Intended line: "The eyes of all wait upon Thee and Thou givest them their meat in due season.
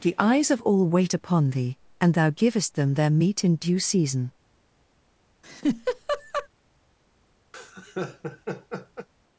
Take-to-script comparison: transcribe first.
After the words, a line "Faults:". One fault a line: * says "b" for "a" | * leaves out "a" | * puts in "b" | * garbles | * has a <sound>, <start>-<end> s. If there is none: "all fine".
"The eyes of all wait upon Thee and Thou givest them their meat in due season.
Faults:
* has a laugh, 5.4-6.5 s
* has a laugh, 7.5-9.1 s